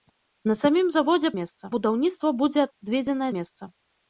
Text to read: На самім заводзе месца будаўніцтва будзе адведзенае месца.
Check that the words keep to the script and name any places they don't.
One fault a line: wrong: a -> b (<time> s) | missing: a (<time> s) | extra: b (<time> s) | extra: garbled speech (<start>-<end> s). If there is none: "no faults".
no faults